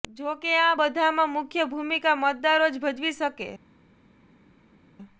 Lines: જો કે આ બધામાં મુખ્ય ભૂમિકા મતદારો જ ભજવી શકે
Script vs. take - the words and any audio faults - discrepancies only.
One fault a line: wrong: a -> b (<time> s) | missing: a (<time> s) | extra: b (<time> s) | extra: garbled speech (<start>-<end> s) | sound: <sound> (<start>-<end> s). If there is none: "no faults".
no faults